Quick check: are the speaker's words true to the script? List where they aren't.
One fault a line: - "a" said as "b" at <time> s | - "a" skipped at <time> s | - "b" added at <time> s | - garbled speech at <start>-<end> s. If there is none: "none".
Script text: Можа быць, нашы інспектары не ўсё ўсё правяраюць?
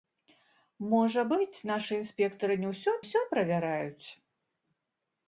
none